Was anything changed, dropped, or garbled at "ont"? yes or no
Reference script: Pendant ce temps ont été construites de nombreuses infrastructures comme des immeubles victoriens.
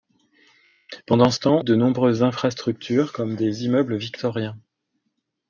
yes